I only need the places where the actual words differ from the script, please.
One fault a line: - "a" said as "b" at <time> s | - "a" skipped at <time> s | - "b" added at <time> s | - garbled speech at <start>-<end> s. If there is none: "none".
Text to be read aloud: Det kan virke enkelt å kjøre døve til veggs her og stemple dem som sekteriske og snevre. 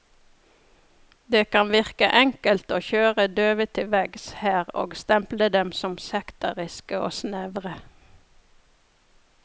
none